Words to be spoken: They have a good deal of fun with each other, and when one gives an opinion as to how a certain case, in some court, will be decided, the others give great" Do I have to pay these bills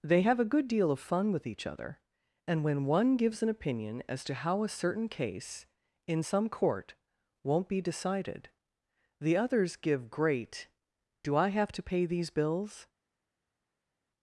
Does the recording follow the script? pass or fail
fail